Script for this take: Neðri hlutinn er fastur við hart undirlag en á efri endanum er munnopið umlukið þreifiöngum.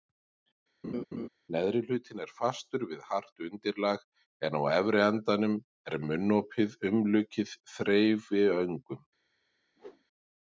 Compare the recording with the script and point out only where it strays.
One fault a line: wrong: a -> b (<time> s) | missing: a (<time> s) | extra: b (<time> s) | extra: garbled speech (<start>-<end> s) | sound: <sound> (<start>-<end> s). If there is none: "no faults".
sound: laugh (0.8-1.3 s)
sound: whoosh (9.8-10.0 s)